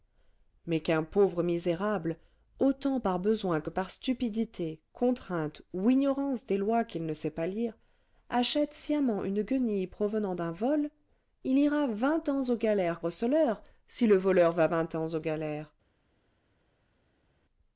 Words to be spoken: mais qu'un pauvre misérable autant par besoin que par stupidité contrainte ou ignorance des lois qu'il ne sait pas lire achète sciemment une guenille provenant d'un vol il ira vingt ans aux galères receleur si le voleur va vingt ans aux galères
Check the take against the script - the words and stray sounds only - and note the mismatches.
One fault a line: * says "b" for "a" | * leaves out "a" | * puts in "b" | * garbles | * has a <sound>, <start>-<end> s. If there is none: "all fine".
all fine